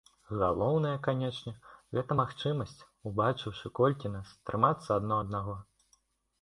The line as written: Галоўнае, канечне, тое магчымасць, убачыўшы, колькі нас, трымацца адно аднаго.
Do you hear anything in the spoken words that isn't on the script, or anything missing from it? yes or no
yes